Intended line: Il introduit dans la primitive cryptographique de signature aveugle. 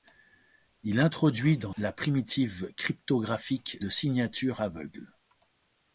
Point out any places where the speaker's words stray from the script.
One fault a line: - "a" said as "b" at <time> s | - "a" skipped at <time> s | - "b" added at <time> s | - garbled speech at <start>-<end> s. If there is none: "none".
none